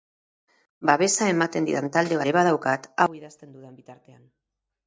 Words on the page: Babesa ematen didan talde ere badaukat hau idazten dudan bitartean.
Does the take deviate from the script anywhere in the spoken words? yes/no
no